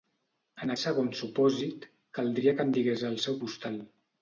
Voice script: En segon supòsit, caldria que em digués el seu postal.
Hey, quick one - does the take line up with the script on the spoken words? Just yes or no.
yes